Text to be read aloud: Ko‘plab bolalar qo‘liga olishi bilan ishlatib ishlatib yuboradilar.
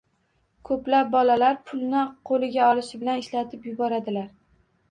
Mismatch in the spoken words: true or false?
true